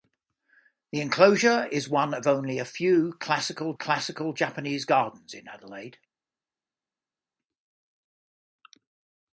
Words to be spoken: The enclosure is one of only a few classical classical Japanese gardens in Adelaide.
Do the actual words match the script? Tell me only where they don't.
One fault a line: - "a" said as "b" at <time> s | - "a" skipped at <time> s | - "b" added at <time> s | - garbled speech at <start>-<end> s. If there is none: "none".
none